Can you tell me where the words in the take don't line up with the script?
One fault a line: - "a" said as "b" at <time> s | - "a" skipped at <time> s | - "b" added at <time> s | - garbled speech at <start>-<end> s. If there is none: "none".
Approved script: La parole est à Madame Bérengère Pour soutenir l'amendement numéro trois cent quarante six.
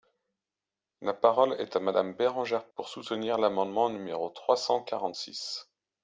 none